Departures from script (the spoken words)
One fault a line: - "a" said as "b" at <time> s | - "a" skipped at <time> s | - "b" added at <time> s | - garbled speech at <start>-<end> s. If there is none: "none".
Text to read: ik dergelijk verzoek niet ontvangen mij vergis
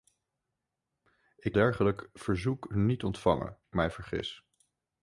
none